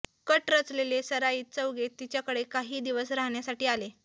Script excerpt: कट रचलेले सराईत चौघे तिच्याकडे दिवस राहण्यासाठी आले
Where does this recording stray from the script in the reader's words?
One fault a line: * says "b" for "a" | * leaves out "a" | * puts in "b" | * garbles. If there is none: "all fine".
* puts in "काही"